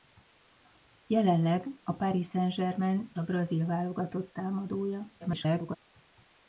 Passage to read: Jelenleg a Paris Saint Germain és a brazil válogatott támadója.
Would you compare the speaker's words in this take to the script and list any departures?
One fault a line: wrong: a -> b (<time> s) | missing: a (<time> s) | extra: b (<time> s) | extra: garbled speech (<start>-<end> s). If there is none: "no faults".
missing: és (3.1 s)
extra: garbled speech (5.2-5.8 s)